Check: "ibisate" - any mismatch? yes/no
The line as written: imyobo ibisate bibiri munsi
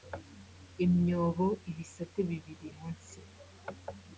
no